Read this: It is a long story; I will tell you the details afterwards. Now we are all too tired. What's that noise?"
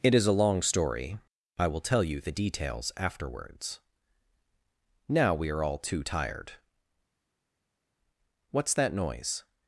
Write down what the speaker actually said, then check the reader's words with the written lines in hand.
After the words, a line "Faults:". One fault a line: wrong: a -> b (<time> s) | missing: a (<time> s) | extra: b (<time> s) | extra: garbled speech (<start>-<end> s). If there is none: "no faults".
It is a long story; I will tell you the details afterwards. Now we are all too tired. What's that noise?"
Faults:
no faults